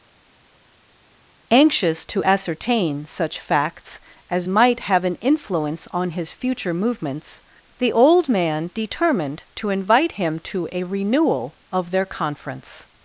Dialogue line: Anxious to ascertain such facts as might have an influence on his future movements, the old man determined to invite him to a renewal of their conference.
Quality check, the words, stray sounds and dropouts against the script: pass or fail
pass